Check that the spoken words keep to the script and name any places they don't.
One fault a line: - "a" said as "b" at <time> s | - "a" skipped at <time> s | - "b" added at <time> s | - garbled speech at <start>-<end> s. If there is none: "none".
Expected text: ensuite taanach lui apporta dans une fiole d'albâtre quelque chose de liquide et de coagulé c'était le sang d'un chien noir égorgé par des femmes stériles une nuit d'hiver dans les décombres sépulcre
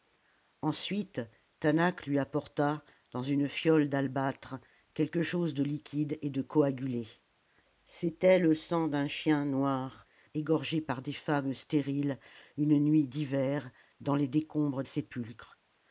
none